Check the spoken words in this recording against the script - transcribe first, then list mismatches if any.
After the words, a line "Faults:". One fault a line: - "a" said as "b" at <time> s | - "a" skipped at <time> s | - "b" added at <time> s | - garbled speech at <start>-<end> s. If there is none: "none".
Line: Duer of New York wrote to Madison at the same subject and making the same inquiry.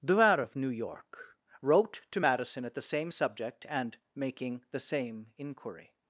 Duer of New York wrote to Madison at the same subject and making the same inquiry.
Faults:
none